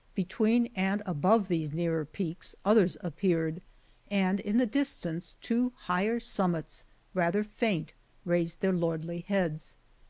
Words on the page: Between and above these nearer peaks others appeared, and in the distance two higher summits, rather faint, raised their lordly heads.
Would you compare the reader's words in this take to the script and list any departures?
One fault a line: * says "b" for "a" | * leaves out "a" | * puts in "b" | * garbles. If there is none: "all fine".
all fine